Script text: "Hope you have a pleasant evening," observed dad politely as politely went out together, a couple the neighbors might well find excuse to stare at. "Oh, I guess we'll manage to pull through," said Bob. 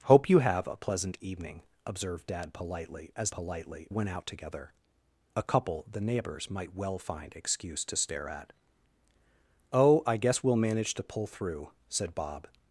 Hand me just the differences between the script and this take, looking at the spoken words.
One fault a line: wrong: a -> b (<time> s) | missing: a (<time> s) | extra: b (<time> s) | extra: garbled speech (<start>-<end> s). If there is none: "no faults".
no faults